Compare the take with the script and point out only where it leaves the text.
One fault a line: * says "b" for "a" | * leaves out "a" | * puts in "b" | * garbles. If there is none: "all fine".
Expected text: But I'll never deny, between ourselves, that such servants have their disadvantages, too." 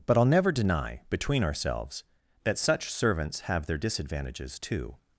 all fine